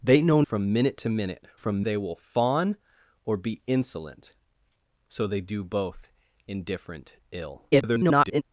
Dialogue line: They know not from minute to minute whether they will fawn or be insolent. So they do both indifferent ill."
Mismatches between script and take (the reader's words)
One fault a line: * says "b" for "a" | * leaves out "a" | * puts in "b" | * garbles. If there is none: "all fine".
* leaves out "not"
* says "from" for "whether"
* garbles